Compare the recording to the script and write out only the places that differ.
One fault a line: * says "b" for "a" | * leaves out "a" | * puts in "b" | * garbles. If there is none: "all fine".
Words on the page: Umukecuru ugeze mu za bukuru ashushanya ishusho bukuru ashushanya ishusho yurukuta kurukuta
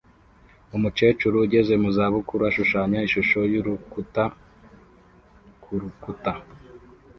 * leaves out "bukuru ashushanya ishusho"